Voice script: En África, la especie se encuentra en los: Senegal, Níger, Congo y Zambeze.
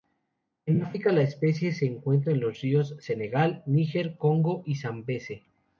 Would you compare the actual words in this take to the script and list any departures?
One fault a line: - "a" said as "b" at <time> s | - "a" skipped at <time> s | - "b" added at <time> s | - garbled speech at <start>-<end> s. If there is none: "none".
- "ríos" added at 2.6 s